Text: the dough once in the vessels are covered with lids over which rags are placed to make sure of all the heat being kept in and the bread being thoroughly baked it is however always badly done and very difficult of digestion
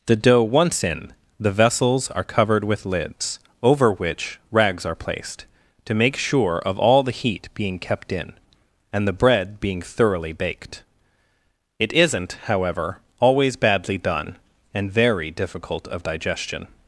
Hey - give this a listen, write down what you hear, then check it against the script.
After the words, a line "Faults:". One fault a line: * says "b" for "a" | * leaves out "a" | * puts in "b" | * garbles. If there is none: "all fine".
the dough once in the vessels are covered with lids over which rags are placed to make sure of all the heat being kept in and the bread being thoroughly baked it isn't however always badly done and very difficult of digestion
Faults:
* says "isn't" for "is"